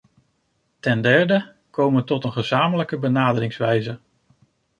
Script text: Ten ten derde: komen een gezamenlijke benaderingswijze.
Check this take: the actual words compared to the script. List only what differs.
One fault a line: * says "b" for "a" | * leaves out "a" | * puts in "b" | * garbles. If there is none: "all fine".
* leaves out "ten"
* puts in "tot"